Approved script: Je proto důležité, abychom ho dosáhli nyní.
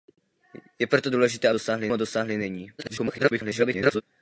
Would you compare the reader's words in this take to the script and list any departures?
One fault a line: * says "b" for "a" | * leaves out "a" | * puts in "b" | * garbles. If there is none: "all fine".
* says "dosáhli" for "abychom"
* garbles